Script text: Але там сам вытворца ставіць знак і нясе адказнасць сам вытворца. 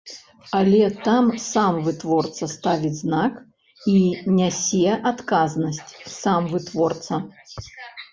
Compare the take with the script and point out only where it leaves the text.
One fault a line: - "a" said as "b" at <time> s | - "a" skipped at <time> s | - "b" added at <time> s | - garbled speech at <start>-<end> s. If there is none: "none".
none